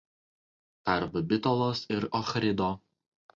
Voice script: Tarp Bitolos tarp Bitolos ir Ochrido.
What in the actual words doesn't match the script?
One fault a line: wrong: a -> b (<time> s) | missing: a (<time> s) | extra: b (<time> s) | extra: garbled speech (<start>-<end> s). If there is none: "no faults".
missing: tarp Bitolos (1.8 s)